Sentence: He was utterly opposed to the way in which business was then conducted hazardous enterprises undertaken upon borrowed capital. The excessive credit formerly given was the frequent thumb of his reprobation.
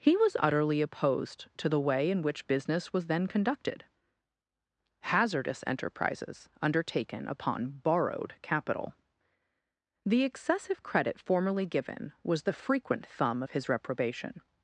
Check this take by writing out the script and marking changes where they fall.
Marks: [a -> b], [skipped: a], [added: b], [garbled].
He was utterly opposed to the way in which business was then conducted hazardous enterprises undertaken upon borrowed capital. The excessive credit formerly given was the frequent thumb of his reprobation.